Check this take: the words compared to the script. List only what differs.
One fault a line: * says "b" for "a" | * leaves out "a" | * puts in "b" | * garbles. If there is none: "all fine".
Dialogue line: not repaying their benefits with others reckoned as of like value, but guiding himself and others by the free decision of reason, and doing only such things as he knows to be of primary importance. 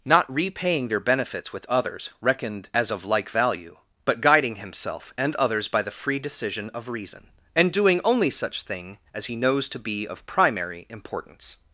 * says "thing" for "things"